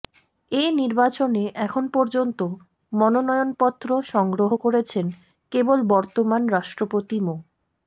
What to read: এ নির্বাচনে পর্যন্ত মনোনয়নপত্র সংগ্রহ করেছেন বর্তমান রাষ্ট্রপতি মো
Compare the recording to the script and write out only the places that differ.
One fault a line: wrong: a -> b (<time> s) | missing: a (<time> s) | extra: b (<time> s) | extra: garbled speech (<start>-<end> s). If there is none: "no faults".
extra: এখন (1.6 s)
extra: কেবল (5.5 s)